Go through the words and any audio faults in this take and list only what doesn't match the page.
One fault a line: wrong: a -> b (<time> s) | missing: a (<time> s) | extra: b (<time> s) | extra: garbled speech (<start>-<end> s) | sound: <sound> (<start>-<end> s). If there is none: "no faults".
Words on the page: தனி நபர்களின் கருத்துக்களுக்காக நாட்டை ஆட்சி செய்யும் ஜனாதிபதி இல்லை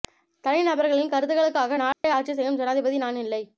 sound: dropout (1.9-2.0 s)
extra: நான் (3.0 s)